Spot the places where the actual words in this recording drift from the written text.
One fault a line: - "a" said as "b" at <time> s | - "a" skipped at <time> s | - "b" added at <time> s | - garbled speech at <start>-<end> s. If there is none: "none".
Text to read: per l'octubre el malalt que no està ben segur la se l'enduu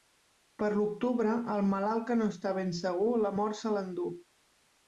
- "mort" added at 3.4 s